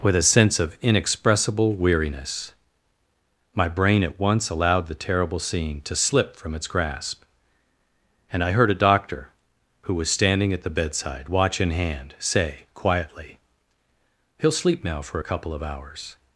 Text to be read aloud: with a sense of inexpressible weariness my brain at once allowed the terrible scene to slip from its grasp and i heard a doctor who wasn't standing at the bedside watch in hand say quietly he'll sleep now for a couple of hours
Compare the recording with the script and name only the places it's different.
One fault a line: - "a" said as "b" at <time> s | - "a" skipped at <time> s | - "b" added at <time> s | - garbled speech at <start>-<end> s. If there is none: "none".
- "wasn't" said as "was" at 9.9 s